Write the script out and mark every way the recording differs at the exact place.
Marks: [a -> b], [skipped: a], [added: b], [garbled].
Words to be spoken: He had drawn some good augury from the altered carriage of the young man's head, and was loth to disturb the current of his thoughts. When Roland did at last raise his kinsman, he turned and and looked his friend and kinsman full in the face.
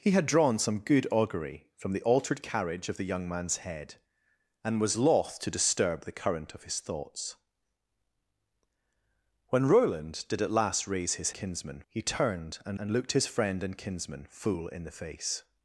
He had drawn some good augury from the altered carriage of the young man's head, and was loth to disturb the current of his thoughts. When Roland did at last raise his kinsman, he turned and and looked his friend and kinsman full in the face.